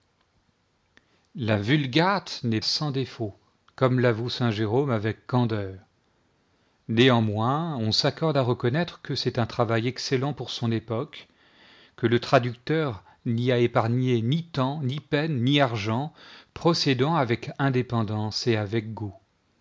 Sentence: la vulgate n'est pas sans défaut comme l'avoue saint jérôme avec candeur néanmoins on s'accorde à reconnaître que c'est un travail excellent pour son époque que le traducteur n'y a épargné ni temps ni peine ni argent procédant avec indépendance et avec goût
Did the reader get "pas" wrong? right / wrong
wrong